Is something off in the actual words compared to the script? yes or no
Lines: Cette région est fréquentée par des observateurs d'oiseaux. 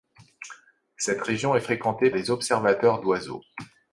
yes